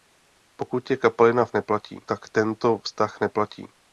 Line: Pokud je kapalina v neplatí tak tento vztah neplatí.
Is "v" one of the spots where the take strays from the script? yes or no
no